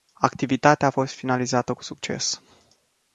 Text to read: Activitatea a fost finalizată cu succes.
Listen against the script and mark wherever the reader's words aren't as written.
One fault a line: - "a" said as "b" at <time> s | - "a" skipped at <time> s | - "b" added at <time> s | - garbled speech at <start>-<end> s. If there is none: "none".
none